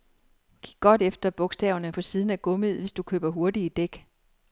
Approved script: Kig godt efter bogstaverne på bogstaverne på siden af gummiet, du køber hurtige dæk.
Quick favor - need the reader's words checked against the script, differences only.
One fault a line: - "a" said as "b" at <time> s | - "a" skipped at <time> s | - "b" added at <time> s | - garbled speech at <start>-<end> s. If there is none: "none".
- "bogstaverne på" skipped at 2.0 s
- "hvis" added at 2.8 s